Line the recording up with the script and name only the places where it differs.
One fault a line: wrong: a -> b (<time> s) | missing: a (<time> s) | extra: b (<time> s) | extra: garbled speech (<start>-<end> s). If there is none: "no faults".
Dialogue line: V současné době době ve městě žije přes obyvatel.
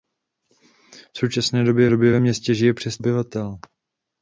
no faults